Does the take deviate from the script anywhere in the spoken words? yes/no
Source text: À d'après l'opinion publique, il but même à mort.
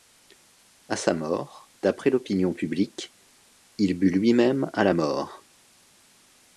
yes